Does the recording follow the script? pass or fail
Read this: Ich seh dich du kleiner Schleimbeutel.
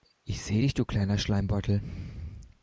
pass